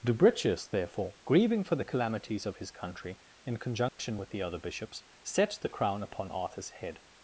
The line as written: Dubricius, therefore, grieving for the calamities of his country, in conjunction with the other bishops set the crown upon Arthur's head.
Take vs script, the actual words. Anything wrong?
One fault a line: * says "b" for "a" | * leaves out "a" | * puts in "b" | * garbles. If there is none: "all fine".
all fine